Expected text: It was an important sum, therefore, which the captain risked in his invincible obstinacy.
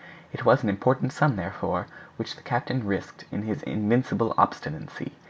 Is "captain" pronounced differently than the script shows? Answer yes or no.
no